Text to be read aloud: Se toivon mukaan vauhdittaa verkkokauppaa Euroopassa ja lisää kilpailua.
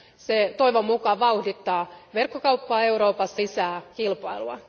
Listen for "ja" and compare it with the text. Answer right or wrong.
wrong